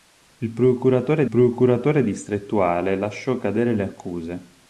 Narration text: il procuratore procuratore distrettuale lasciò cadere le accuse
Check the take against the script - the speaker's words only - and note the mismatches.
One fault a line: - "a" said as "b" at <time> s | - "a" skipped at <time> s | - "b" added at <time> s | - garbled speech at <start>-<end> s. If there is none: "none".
none